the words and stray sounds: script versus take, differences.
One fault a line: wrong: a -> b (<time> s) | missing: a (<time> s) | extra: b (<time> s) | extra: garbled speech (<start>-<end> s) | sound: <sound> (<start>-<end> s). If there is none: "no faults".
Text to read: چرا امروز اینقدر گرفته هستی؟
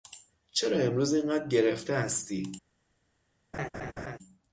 sound: laugh (3.5-4.2 s)